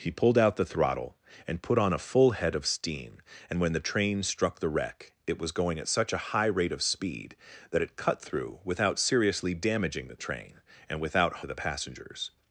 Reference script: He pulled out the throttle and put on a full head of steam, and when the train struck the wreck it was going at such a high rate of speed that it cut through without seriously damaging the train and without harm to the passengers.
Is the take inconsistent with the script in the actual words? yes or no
yes